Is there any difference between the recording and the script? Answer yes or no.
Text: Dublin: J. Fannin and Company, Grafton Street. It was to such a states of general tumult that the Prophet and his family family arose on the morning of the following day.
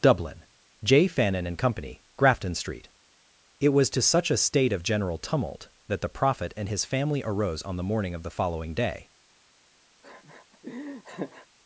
yes